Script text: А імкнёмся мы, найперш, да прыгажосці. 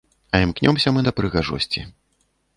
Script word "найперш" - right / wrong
wrong